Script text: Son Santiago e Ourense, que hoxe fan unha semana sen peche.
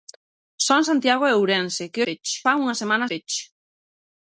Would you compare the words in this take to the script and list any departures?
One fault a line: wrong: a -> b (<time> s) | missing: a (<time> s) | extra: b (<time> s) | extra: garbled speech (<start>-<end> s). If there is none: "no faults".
wrong: hoxe -> peche (2.1 s)
missing: sen (3.1 s)